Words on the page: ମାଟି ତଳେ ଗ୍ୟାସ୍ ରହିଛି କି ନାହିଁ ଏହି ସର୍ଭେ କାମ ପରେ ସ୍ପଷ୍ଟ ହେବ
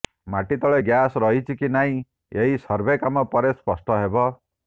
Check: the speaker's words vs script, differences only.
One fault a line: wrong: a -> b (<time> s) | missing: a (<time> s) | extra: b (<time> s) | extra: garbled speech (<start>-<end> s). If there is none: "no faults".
no faults